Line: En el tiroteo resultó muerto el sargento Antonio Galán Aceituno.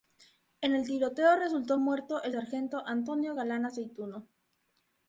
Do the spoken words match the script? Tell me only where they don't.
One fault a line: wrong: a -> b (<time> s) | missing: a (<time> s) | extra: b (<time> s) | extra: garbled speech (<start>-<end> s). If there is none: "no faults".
no faults